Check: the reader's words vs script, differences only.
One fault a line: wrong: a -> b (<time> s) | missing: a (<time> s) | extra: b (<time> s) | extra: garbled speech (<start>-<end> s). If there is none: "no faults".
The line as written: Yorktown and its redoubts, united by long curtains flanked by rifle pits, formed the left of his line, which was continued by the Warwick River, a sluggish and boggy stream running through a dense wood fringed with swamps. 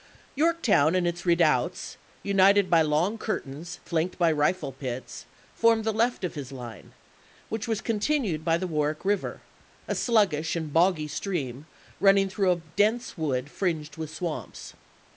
no faults